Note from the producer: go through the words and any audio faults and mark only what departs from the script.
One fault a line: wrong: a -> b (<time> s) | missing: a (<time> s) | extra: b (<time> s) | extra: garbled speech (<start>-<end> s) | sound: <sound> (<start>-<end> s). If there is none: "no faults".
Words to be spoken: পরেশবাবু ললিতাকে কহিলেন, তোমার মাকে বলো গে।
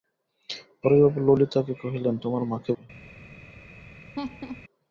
missing: বলো (2.7 s)
sound: laugh (4.1-4.6 s)